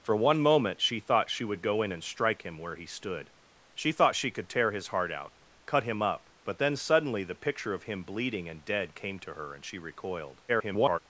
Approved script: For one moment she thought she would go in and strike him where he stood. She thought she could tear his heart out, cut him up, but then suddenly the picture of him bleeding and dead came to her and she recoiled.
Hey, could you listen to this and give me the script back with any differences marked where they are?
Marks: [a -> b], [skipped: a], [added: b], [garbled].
For one moment she thought she would go in and strike him where he stood. She thought she could tear his heart out, cut him up, but then suddenly the picture of him bleeding and dead came to her and she recoiled. [garbled]